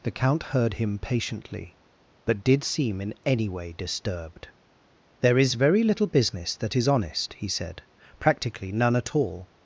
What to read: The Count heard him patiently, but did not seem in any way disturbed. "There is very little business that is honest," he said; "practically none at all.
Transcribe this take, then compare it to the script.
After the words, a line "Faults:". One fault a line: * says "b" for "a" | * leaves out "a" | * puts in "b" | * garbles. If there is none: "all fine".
The Count heard him patiently, but did seem in any way disturbed. "There is very little business that is honest," he said; "practically none at all.
Faults:
* leaves out "not"